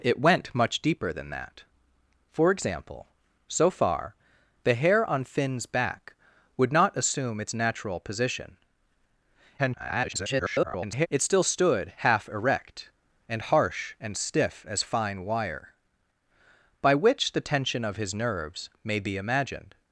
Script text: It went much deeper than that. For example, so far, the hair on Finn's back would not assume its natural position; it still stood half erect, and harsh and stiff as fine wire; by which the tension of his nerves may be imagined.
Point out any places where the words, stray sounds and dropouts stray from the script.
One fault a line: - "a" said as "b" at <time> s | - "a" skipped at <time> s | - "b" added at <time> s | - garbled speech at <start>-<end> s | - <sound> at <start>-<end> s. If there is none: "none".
- garbled speech at 9.6-11.1 s